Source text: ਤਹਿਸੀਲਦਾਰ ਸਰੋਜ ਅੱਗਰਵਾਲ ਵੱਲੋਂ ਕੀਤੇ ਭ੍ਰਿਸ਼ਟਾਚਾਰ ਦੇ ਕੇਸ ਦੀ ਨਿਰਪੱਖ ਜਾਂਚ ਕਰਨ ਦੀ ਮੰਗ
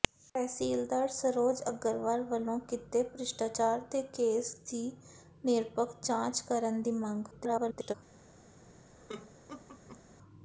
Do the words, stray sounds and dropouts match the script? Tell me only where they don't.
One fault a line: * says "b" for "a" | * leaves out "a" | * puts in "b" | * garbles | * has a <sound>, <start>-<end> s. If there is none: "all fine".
* garbles
* has a laugh, 9.0-10.2 s